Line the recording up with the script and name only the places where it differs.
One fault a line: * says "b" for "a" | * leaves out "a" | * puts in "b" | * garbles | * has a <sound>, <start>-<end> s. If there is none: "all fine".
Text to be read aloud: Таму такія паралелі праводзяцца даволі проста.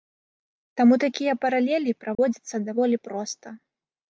* has a dropout, 2.1-2.2 s